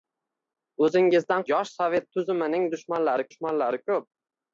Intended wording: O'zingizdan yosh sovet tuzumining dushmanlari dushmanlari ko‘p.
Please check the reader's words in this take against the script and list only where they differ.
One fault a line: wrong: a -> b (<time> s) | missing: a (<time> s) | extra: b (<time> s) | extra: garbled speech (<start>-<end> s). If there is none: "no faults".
no faults